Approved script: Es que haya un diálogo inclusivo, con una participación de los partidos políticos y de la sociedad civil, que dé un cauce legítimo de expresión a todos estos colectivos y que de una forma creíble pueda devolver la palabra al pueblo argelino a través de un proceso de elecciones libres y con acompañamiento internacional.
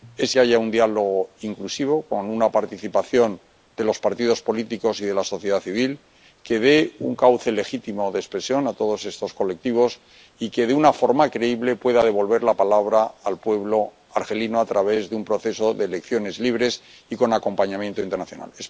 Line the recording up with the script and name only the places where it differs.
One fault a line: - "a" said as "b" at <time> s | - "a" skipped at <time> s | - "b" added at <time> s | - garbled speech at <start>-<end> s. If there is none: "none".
none